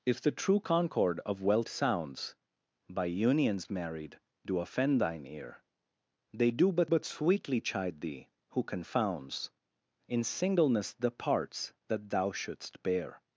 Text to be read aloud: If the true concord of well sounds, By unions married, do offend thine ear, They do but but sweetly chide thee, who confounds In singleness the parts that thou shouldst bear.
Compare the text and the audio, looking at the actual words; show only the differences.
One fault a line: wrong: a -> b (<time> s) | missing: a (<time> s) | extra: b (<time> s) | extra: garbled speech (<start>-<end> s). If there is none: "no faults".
no faults